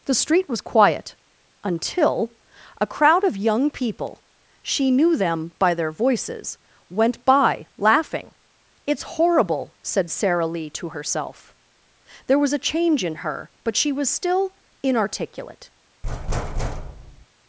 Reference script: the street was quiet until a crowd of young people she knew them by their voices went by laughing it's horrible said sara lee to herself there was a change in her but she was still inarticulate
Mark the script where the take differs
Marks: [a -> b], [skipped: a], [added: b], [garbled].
the street was quiet until a crowd of young people she knew them by their voices went by laughing it's horrible said sara lee to herself there was a change in her but she was still inarticulate